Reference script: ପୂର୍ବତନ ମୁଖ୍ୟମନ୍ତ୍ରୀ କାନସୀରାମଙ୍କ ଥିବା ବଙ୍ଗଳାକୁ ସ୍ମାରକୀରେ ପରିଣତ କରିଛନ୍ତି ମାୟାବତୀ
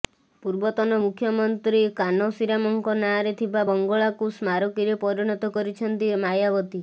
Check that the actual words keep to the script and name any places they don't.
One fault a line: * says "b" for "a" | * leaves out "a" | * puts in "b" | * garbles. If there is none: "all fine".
* puts in "ନାଁରେ"